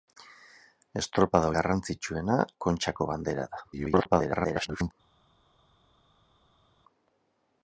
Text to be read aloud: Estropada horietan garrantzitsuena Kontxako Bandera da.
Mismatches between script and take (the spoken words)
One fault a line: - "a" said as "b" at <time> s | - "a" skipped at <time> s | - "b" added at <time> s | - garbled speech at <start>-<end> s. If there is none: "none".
- "horietan" skipped at 1.5 s
- garbled speech at 3.7-4.9 s